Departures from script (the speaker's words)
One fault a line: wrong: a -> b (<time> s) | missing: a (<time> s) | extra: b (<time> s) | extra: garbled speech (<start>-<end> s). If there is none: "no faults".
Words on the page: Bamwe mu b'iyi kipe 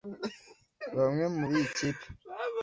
no faults